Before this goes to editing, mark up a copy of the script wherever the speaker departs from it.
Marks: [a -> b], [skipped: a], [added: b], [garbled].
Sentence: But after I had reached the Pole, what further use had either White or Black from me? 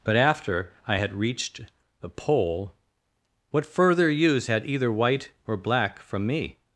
But after I had reached the Pole, what further use had either White or Black from me?